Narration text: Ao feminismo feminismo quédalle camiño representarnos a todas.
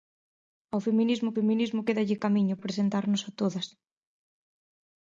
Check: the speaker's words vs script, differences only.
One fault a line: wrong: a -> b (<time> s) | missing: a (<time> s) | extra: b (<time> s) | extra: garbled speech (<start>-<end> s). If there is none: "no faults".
no faults